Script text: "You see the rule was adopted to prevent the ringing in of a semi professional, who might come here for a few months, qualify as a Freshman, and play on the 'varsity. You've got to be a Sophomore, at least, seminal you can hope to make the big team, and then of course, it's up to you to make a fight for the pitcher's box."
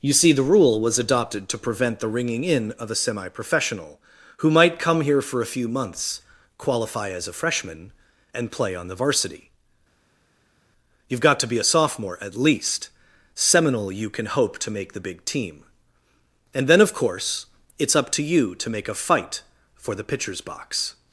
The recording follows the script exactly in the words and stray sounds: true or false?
true